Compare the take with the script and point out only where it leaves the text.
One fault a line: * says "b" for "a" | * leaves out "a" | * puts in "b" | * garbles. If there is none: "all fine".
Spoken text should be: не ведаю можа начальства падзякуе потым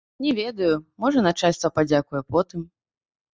all fine